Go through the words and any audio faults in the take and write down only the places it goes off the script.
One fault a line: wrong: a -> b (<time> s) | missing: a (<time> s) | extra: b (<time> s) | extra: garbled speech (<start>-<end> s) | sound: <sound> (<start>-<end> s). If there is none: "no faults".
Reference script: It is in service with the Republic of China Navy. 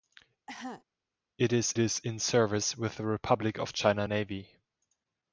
sound: cough (0.5-0.8 s)
extra: is (1.8 s)